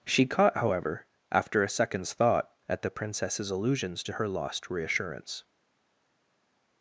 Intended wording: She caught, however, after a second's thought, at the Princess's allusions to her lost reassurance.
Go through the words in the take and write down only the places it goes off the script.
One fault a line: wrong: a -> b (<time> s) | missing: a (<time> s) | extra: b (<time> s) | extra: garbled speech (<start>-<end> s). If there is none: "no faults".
no faults